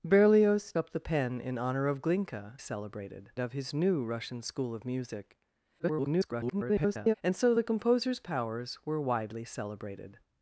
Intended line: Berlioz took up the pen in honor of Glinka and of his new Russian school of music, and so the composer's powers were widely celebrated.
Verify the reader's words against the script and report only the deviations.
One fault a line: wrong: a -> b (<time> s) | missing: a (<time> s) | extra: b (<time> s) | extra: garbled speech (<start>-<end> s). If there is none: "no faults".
missing: took (0.7 s)
wrong: and -> celebrated (2.6 s)
extra: garbled speech (5.8-7.1 s)